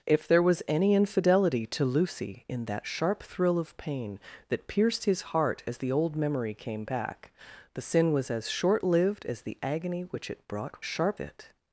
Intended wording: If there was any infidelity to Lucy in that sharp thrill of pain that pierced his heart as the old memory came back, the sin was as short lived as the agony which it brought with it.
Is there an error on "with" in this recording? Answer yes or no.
yes